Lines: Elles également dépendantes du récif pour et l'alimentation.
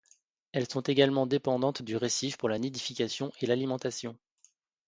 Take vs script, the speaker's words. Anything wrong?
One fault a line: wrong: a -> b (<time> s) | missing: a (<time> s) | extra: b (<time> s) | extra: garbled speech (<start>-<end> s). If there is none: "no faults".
extra: sont (0.7 s)
extra: la nidification (2.5 s)